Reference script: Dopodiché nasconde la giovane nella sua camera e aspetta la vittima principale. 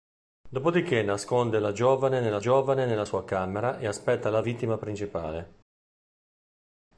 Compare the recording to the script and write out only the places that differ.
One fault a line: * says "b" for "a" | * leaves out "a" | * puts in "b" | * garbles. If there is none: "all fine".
* puts in "giovane nella"